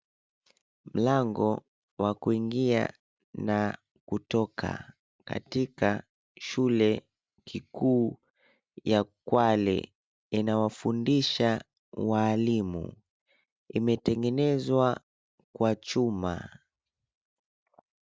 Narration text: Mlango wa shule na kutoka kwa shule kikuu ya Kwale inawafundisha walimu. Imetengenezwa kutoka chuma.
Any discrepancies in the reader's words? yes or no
yes